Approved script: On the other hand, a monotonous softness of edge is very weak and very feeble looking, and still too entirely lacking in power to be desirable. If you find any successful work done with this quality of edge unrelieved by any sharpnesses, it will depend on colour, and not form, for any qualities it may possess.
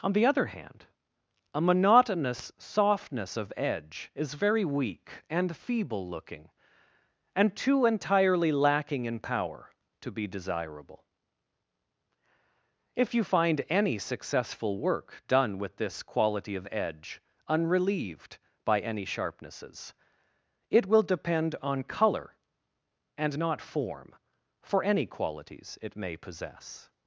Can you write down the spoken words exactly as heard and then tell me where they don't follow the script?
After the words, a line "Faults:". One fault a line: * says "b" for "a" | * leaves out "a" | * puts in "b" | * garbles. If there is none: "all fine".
On the other hand, a monotonous softness of edge is very weak and feeble looking, and too entirely lacking in power to be desirable. If you find any successful work done with this quality of edge unrelieved by any sharpnesses, it will depend on colour, and not form, for any qualities it may possess.
Faults:
* leaves out "very"
* leaves out "still"